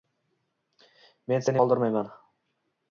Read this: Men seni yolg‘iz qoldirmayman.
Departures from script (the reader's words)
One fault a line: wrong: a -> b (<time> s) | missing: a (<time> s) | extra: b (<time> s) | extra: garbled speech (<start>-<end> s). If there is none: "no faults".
missing: yolg‘iz (1.6 s)